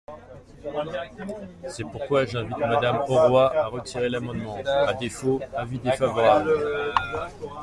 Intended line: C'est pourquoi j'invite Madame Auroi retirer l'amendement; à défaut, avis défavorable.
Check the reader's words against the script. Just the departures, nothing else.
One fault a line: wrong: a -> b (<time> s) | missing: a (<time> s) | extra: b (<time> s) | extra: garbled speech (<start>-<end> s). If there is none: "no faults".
extra: à (3.5 s)